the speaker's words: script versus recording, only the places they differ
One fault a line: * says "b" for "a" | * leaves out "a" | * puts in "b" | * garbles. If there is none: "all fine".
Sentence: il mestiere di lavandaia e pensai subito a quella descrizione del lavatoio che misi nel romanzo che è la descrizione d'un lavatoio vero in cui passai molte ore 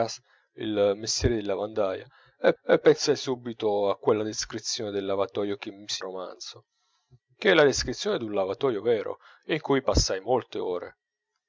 * puts in "e"
* leaves out "nel"